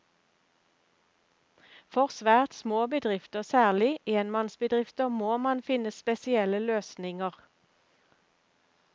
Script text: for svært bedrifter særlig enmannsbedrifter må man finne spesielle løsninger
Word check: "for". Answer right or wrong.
right